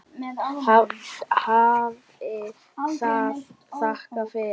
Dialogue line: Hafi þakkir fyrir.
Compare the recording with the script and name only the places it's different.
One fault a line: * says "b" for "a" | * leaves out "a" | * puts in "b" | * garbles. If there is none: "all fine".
* puts in "það"